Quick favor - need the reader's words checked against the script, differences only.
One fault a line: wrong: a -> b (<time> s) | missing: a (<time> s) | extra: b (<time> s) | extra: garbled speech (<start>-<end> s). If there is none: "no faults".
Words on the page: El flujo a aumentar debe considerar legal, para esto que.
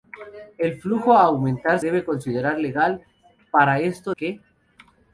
no faults